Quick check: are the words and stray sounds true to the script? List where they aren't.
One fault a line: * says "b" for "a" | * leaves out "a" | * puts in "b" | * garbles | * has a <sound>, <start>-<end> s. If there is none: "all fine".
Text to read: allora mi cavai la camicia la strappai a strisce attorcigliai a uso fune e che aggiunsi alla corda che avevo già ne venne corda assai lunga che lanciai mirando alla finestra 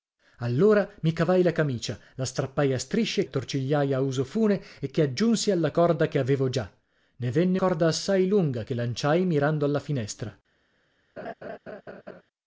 * has a laugh, 11.2-12.2 s